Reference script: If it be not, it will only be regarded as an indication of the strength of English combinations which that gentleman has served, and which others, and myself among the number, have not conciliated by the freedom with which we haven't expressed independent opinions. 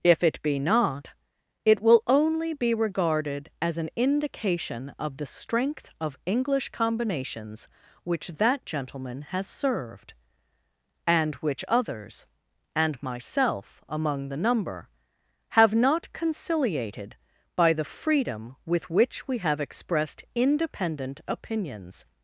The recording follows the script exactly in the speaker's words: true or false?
false